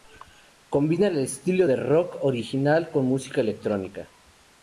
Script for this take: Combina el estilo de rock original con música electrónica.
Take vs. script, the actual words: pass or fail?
pass